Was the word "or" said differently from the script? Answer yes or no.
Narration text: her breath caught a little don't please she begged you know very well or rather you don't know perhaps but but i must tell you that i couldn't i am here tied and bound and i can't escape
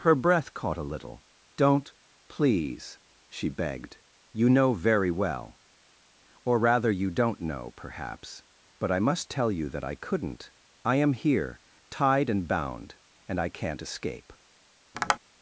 no